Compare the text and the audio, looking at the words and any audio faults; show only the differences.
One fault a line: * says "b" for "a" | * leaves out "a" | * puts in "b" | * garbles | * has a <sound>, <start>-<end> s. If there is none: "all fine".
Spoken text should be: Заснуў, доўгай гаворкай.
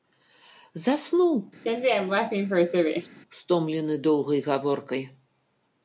* has a laugh, 1.6-3.2 s
* puts in "стомлены"